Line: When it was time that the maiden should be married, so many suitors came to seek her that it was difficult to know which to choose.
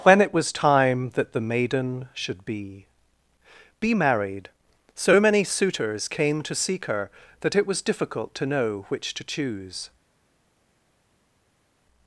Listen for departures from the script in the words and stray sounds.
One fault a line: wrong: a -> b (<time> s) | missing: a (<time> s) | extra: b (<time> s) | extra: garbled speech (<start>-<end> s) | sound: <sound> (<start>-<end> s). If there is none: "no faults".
extra: be (3.8 s)